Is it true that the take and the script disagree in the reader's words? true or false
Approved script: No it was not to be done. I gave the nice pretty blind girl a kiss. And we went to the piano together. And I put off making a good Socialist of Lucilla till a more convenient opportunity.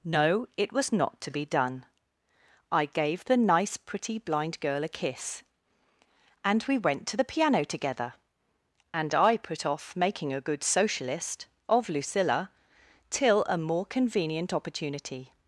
false